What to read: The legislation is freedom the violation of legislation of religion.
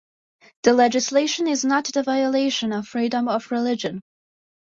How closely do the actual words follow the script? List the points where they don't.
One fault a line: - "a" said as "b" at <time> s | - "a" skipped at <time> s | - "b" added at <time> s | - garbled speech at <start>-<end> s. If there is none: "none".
- "freedom" said as "not" at 1.6 s
- "legislation" said as "freedom" at 2.9 s